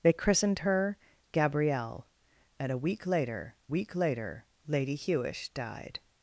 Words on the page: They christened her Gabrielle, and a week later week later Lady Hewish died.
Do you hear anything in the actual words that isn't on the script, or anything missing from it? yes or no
no